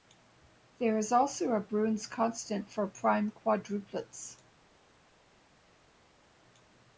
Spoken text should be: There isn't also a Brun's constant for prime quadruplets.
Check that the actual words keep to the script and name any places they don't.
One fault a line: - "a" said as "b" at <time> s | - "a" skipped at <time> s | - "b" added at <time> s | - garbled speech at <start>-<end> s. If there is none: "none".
- "isn't" said as "is" at 1.0 s